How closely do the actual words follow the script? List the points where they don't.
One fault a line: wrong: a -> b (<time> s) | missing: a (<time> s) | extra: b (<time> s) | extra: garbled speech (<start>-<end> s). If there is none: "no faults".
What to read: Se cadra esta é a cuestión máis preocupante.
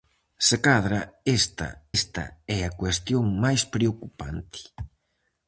extra: esta (2.0 s)